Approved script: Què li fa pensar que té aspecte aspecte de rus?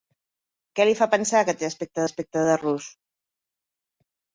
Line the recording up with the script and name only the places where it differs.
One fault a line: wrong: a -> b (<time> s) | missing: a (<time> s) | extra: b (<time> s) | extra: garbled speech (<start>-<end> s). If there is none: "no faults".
no faults